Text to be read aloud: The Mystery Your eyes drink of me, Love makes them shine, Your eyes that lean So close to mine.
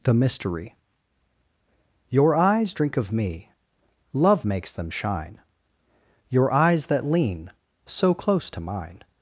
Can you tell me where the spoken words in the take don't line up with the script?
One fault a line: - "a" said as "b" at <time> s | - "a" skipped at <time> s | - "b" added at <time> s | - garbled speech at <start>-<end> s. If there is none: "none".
none